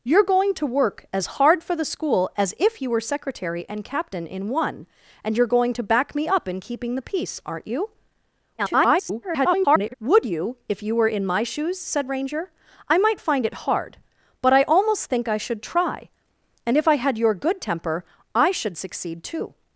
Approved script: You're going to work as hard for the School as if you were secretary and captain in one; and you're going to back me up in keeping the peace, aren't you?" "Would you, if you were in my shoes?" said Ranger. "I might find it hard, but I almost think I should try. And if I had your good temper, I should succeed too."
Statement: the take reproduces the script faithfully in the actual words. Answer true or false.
false